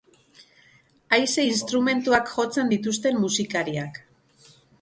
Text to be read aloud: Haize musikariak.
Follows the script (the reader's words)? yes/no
no